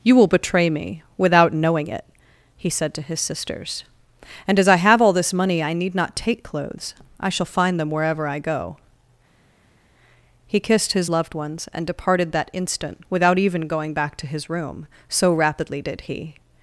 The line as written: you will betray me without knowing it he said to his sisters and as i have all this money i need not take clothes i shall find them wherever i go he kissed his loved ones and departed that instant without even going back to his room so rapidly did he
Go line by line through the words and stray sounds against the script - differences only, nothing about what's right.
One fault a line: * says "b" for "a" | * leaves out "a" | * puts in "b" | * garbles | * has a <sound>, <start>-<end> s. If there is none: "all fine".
all fine